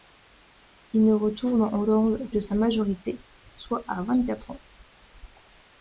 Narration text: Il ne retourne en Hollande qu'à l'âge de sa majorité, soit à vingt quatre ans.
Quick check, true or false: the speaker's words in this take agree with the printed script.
false